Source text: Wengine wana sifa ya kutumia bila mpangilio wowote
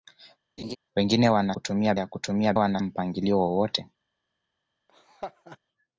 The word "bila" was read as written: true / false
false